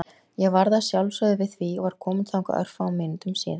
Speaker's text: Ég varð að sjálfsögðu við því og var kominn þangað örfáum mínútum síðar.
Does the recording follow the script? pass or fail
pass